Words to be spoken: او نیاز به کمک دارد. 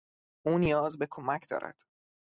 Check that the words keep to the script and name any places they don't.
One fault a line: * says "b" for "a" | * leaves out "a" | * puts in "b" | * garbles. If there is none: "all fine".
all fine